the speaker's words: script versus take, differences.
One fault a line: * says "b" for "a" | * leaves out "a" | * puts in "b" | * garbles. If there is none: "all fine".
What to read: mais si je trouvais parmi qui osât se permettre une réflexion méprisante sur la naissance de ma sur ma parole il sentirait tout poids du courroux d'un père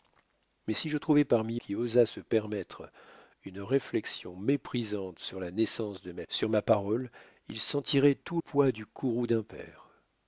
all fine